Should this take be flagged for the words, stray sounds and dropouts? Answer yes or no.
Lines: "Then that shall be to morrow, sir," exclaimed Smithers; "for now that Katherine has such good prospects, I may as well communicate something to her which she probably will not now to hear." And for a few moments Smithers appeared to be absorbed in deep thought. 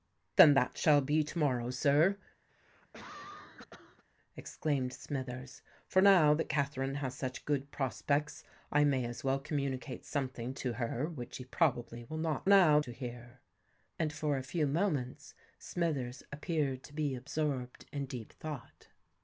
yes